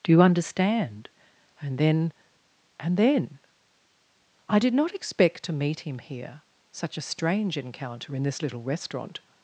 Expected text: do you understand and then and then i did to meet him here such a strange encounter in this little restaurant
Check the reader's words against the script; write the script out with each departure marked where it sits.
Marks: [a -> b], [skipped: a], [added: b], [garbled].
do you understand and then and then i did [added: not expect] to meet him here such a strange encounter in this little restaurant